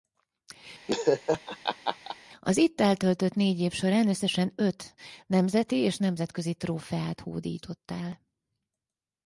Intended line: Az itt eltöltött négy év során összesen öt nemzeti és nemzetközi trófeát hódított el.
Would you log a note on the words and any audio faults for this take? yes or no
yes